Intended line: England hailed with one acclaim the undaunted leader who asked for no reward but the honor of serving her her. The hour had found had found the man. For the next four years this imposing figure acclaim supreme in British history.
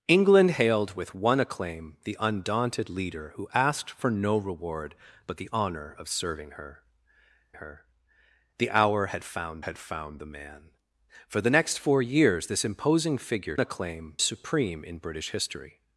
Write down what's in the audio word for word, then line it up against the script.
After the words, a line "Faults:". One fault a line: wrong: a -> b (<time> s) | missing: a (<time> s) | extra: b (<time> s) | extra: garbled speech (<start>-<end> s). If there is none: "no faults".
England hailed with one acclaim the undaunted leader who asked for no reward but the honor of serving her her. The hour had found had found the man. For the next four years this imposing figure acclaim supreme in British history.
Faults:
no faults